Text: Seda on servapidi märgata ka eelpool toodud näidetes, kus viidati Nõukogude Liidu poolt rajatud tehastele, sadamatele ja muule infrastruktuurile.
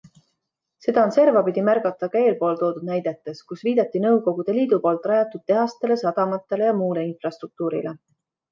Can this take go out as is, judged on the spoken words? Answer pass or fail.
pass